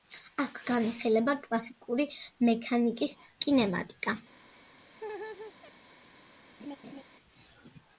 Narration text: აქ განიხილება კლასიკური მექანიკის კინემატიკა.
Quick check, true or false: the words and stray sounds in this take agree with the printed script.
false